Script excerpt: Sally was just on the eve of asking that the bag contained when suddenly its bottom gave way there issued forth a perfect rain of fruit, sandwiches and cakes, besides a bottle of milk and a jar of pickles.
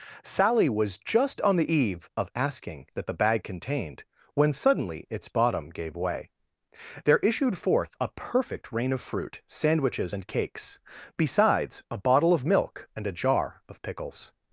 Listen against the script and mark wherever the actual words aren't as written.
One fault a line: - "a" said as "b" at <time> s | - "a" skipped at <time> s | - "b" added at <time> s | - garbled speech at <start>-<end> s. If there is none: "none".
none